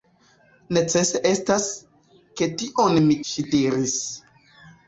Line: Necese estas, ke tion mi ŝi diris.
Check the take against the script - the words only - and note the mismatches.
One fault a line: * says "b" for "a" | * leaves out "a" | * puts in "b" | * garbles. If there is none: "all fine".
all fine